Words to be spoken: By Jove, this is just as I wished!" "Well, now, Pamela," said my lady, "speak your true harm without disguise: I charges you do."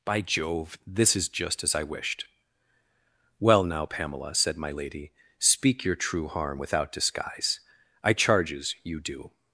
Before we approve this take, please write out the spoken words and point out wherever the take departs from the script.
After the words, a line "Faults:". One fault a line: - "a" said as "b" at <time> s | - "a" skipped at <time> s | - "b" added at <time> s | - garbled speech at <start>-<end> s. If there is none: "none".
By Jove, this is just as I wished!" "Well, now, Pamela," said my lady, "speak your true harm without disguise: I charges you do."
Faults:
none